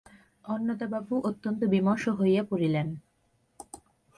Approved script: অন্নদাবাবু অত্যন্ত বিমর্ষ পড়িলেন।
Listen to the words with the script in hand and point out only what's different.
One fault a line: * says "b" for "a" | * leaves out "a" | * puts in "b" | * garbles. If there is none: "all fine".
* puts in "হইয়া"